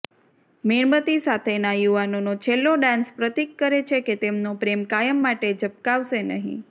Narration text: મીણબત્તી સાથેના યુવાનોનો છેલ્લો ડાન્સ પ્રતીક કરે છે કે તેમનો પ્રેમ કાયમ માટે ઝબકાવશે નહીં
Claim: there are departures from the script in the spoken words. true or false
false